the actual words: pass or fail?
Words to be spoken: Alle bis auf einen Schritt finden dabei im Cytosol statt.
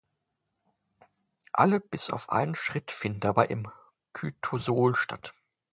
pass